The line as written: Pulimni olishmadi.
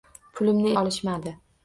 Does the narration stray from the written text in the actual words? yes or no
no